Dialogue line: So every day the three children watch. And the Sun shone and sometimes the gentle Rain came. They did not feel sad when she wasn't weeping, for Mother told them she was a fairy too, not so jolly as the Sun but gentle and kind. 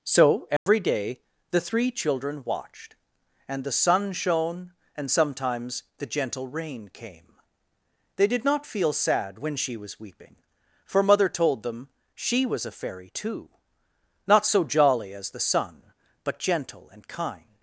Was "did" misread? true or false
false